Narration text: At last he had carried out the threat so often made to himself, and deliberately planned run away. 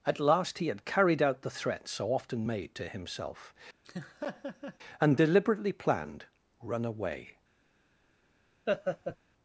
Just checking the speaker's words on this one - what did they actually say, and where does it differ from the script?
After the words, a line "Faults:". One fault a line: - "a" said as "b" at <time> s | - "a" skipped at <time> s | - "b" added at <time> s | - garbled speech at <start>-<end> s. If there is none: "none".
At last he had carried out the threat so often made to himself, and deliberately planned run away.
Faults:
none